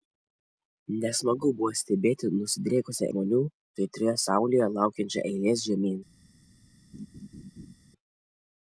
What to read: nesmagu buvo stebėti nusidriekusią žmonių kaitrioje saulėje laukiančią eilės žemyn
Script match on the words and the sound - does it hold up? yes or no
no